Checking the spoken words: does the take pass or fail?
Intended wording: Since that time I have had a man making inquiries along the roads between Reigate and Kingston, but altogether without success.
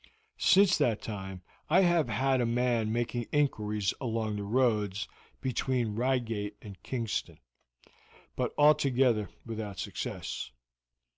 pass